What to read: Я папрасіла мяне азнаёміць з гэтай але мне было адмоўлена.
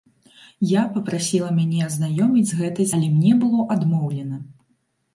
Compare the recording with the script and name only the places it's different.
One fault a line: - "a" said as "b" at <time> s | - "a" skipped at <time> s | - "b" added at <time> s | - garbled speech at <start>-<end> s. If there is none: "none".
none